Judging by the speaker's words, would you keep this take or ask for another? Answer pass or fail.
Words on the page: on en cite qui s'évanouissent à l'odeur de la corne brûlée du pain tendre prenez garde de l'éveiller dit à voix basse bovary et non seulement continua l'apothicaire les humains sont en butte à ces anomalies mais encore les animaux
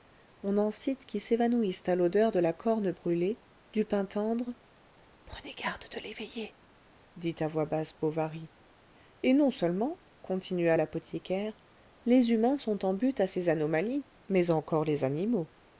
pass